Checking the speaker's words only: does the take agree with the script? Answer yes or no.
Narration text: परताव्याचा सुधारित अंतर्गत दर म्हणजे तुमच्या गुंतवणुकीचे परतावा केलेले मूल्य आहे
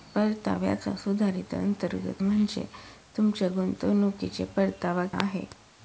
no